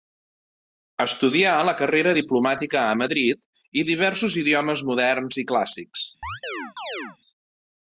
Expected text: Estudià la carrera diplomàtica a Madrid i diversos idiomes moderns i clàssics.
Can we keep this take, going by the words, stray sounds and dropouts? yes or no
no